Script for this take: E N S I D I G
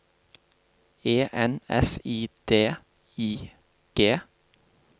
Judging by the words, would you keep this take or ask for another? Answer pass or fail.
pass